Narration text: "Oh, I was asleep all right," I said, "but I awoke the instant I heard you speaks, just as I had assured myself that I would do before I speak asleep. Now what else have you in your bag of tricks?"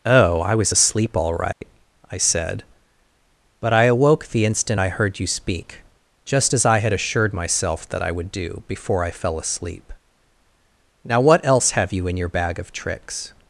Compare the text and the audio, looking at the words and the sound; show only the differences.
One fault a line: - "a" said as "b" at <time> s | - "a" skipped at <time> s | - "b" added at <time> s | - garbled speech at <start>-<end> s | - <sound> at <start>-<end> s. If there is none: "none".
- dropout at 1.5-1.6 s
- "speaks" said as "speak" at 5.3 s
- "speak" said as "fell" at 9.1 s